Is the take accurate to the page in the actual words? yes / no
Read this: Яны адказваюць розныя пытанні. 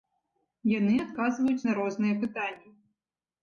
no